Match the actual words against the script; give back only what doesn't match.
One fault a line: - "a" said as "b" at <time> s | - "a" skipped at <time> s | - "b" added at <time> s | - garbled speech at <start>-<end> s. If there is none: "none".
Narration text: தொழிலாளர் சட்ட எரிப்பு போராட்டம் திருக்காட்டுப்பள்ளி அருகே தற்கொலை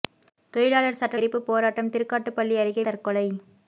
none